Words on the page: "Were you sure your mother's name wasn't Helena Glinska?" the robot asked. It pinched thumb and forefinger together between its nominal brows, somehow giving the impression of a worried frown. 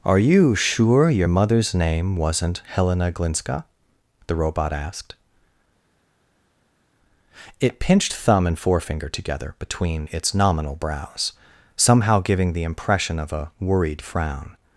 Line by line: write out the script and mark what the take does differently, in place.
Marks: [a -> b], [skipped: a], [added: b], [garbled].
["Were -> Are] you sure your mother's name wasn't Helena Glinska?" the robot asked. It pinched thumb and forefinger together between its nominal brows, somehow giving the impression of a worried frown.